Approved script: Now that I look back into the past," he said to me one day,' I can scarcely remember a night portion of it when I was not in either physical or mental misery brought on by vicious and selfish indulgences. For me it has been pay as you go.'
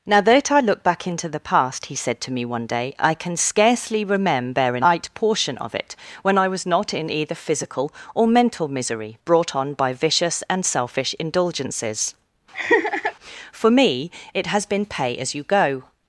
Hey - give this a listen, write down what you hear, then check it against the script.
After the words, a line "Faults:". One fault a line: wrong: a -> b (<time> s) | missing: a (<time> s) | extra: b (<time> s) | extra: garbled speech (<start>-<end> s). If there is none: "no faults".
Now that I look back into the past," he said to me one day,' I can scarcely remember a night portion of it when I was not in either physical or mental misery brought on by vicious and selfish indulgences. For me it has been pay as you go.'
Faults:
no faults